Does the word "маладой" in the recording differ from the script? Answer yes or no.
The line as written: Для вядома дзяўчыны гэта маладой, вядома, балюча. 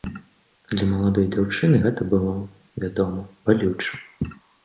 yes